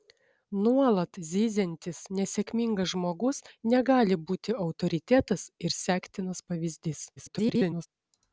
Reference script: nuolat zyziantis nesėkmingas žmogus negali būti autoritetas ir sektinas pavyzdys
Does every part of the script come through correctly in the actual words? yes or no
no